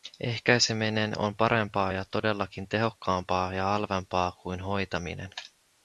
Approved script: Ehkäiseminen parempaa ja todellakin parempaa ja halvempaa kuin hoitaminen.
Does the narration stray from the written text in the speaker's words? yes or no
yes